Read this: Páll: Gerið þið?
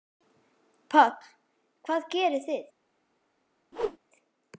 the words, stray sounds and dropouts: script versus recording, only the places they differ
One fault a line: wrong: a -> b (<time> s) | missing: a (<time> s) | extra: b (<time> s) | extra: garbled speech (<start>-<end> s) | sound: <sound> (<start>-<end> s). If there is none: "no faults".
extra: Hvað (1.9 s)
sound: whoosh (3.7-4.0 s)